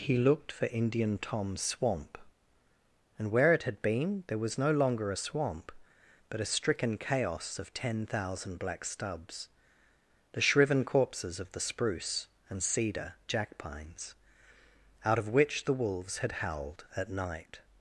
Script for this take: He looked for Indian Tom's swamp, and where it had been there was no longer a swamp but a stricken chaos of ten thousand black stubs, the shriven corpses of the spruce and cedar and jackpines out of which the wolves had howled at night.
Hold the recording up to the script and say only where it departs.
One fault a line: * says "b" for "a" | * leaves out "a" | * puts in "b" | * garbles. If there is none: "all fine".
* leaves out "and"